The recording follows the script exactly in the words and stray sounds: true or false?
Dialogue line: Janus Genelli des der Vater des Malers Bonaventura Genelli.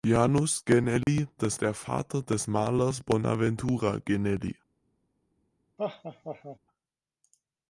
false